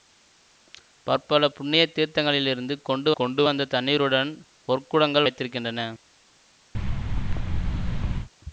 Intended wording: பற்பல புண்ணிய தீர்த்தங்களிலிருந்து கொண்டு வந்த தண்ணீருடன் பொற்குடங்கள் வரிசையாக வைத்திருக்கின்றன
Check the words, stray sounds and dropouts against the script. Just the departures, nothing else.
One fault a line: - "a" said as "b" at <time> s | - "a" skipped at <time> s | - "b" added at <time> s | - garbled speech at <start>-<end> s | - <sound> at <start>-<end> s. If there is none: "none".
- "கொண்டு" added at 3.1 s
- "வரிசையாக" skipped at 5.3 s
- thud at 6.7-8.3 s